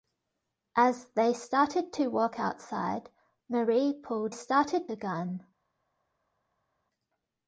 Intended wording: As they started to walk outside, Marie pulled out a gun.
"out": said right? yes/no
no